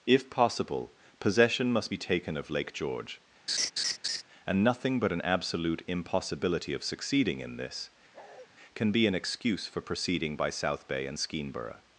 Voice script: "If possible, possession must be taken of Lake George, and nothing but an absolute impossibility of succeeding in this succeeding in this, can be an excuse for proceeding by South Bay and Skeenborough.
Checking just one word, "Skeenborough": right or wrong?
right